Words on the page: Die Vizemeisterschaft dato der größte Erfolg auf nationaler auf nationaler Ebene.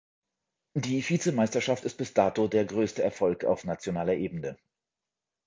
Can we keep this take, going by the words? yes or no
no